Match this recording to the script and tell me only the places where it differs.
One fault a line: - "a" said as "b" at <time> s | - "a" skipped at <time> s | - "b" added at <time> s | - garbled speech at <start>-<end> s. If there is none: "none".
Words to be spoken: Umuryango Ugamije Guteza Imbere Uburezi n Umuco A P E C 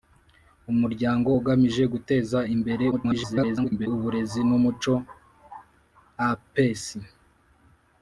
- garbled speech at 2.9-3.9 s